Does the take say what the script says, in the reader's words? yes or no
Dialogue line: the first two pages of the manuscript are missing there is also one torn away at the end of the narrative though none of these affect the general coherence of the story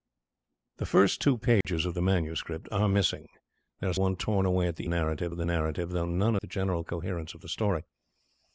no